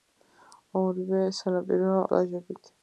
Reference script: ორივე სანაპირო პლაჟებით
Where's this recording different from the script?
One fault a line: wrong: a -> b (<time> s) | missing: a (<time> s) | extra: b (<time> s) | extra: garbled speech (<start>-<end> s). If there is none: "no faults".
no faults